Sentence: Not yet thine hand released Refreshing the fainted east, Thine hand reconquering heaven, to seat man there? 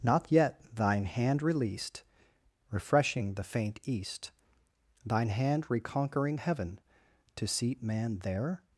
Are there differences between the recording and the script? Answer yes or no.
yes